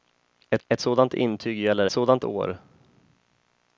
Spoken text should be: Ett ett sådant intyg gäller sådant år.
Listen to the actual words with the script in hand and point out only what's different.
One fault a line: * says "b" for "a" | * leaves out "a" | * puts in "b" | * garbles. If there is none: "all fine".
all fine